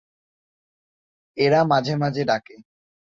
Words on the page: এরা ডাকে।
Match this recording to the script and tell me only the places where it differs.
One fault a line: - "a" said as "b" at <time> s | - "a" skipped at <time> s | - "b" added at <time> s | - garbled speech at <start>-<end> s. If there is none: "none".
- "মাঝে মাঝে" added at 1.6 s